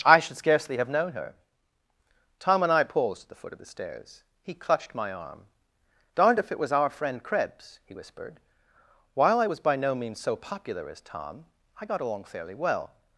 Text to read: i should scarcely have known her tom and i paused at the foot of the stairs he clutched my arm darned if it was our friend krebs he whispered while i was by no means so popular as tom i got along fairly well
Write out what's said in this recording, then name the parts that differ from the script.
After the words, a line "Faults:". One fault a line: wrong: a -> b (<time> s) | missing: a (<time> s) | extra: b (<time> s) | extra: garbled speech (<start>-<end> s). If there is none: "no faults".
i should scarcely have known her tom and i paused at the foot of the stairs he clutched my arm darned if it was our friend krebs he whispered while i was by no means so popular as tom i got along fairly well
Faults:
no faults